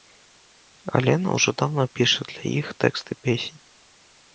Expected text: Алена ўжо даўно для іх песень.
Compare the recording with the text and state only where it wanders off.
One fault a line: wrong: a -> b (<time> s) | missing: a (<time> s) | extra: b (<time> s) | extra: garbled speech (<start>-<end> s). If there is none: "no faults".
extra: піша (2.0 s)
extra: тэксты (2.9 s)